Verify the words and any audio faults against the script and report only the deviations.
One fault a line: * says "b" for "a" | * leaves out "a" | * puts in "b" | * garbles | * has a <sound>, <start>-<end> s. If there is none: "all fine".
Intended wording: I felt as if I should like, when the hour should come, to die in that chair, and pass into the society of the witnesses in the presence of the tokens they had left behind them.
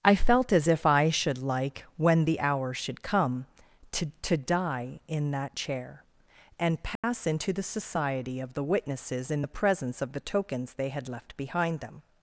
* puts in "to"
* has a dropout, 7.0-7.0 s